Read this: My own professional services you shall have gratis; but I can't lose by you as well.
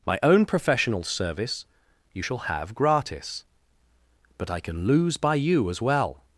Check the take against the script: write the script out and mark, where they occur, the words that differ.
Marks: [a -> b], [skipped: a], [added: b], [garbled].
My own professional [services -> service] you shall have gratis; but I [can't -> can] lose by you as well.